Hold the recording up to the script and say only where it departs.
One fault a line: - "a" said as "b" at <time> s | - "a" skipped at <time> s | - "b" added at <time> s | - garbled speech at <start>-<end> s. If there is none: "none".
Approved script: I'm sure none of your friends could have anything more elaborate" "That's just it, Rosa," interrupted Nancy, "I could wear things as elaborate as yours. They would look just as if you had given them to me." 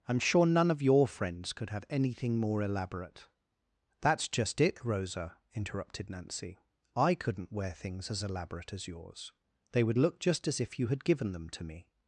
- "could" said as "couldn't" at 7.1 s